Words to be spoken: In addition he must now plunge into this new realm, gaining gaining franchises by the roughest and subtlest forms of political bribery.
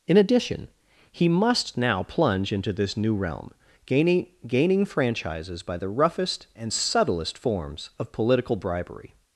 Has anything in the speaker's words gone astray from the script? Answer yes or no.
no